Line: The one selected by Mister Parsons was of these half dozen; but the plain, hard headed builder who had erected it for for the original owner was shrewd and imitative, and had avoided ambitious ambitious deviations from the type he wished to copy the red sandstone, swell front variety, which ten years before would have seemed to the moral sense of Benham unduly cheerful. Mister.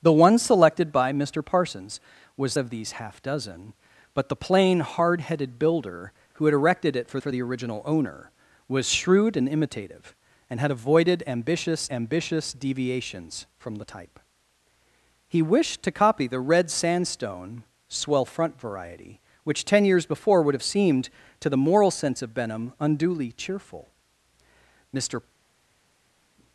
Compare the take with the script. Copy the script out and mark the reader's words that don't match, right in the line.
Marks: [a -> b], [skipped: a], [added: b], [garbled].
The one selected by Mister Parsons was of these half dozen; but the plain, hard headed builder who had erected it for for the original owner was shrewd and imitative, and had avoided ambitious ambitious deviations from the type he wished to copy the red sandstone, swell front variety, which ten years before would have seemed to the moral sense of Benham unduly cheerful. Mister.